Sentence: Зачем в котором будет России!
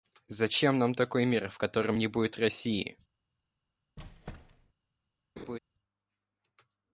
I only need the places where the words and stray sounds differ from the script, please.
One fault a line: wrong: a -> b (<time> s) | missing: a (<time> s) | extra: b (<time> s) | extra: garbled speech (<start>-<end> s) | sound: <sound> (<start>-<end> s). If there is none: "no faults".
extra: нам такой мир (0.8 s)
extra: не (2.0 s)
sound: squeak (4.0-4.7 s)
sound: laugh (5.4-5.6 s)